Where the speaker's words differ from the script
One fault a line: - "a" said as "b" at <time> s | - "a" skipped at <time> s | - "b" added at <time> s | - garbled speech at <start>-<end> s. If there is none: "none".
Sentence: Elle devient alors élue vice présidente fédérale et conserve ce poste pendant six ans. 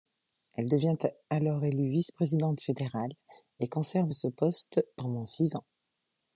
none